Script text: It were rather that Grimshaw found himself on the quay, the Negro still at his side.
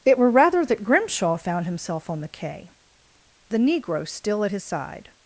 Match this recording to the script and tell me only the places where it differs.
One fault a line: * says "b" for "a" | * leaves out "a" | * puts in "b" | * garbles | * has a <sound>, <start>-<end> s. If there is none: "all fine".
all fine